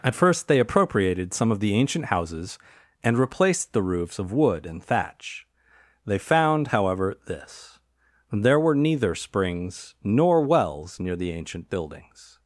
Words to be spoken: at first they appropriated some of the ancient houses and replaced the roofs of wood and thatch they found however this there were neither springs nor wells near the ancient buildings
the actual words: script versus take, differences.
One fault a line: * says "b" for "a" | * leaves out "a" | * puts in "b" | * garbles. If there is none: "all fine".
all fine